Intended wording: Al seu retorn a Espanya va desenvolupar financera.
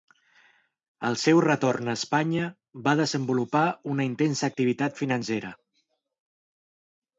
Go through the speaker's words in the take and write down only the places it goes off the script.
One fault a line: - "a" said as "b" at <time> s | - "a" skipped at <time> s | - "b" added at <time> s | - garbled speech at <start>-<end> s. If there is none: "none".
- "una intensa activitat" added at 3.9 s